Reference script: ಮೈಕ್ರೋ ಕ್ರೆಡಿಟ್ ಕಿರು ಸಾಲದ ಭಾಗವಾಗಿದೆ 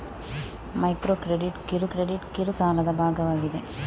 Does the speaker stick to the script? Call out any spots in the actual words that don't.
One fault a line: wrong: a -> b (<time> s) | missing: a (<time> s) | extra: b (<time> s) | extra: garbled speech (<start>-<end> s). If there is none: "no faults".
extra: ಕ್ರೆಡಿಟ್ ಕಿರು (1.9 s)